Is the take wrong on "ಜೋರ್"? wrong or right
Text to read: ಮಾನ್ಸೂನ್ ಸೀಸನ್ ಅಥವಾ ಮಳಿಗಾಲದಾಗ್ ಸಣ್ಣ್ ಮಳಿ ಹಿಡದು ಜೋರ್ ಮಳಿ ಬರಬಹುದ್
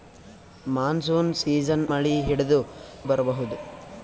wrong